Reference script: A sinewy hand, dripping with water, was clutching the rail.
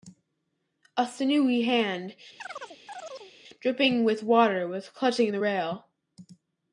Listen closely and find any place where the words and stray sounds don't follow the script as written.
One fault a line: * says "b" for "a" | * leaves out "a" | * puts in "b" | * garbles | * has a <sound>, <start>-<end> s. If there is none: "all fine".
* has a chirp, 2.4-3.3 s